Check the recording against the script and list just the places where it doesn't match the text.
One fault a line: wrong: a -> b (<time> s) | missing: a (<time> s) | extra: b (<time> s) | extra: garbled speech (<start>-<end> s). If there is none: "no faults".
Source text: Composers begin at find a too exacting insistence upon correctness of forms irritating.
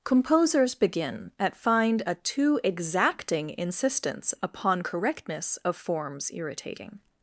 no faults